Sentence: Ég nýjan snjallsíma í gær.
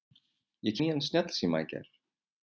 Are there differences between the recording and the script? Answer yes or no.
no